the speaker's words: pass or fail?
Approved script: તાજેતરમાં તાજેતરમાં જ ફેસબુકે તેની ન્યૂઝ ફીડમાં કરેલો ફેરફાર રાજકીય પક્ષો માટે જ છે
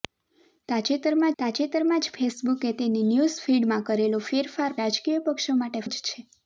pass